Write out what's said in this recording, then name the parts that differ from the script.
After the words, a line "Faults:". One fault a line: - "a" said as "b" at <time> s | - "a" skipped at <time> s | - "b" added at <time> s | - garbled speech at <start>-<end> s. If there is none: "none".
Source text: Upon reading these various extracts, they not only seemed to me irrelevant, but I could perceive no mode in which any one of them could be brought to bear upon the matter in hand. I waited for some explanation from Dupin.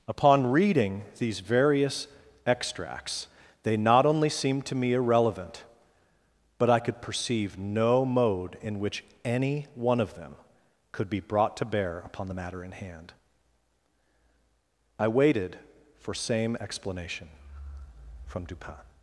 Upon reading these various extracts, they not only seemed to me irrelevant, but I could perceive no mode in which any one of them could be brought to bear upon the matter in hand. I waited for same explanation from Dupin.
Faults:
- "some" said as "same" at 16.1 s